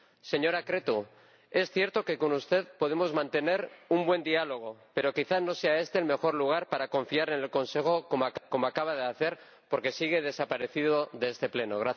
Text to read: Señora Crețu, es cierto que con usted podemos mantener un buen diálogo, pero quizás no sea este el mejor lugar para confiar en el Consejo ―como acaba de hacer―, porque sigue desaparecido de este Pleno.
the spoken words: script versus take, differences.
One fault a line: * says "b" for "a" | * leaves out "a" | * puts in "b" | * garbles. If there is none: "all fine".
all fine